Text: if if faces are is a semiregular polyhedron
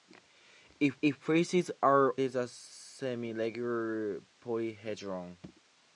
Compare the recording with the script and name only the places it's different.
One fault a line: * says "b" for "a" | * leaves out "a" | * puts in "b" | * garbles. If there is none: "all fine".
all fine